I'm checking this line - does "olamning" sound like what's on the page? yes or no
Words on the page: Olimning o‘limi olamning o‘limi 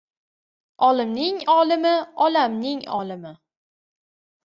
yes